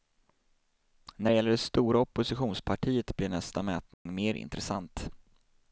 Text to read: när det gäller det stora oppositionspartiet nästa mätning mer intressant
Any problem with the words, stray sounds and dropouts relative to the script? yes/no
yes